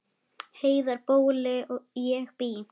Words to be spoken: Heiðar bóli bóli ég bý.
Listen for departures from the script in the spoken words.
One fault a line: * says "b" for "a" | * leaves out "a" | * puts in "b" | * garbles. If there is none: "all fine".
* leaves out "bóli"